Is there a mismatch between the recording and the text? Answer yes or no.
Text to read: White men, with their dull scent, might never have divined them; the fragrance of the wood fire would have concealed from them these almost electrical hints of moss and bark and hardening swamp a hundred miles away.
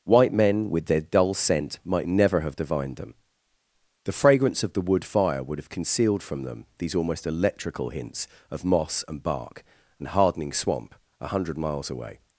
no